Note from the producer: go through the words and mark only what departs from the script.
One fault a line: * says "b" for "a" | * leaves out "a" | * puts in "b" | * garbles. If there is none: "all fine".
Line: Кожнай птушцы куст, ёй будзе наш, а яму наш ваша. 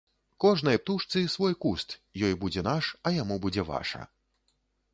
* puts in "свой"
* says "будзе" for "наш"